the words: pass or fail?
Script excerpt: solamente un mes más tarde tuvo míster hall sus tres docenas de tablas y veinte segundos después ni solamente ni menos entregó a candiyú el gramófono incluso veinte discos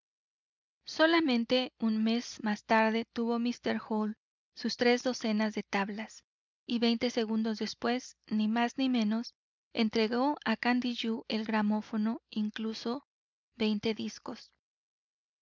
fail